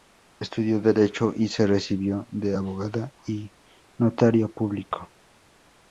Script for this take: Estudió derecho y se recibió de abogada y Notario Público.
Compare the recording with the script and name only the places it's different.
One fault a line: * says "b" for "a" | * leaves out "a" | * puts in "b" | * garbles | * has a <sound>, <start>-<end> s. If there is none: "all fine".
all fine